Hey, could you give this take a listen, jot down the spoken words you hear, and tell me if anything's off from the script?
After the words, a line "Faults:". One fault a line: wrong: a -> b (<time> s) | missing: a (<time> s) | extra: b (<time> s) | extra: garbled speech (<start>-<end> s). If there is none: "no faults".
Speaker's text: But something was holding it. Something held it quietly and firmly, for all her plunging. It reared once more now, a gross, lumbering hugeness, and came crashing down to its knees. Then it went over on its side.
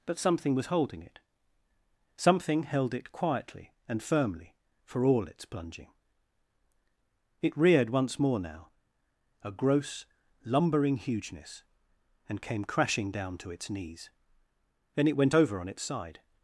But something was holding it. Something held it quietly and firmly, for all its plunging. It reared once more now, a gross, lumbering hugeness, and came crashing down to its knees. Then it went over on its side.
Faults:
wrong: her -> its (5.3 s)